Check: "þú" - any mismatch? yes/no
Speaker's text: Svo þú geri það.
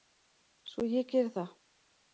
yes